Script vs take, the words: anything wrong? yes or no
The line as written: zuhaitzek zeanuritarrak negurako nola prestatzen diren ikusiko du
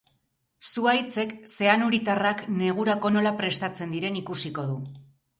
no